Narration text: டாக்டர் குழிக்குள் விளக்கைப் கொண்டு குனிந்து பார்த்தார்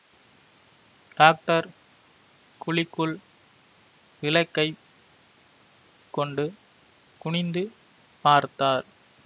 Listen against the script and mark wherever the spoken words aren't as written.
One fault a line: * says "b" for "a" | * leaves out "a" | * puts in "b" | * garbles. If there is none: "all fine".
all fine